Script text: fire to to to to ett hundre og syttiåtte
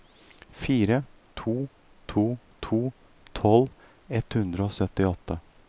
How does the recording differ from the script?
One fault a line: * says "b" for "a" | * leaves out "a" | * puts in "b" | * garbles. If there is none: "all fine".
* says "tolv" for "to"